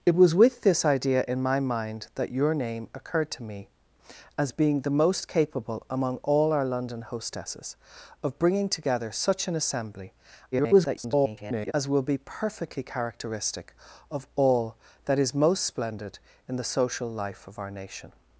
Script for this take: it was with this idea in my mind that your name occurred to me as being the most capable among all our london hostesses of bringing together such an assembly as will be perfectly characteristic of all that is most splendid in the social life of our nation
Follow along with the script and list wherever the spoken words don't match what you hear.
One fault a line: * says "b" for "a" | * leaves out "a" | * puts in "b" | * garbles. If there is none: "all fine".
* garbles